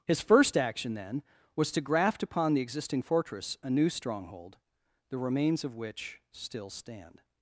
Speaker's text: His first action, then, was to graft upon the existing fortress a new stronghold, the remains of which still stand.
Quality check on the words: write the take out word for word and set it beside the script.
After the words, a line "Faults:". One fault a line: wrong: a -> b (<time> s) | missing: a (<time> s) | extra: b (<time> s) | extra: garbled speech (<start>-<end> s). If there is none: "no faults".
His first action, then, was to graft upon the existing fortress a new stronghold, the remains of which still stand.
Faults:
no faults